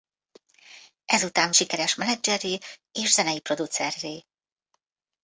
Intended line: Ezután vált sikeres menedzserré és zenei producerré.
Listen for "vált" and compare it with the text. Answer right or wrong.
wrong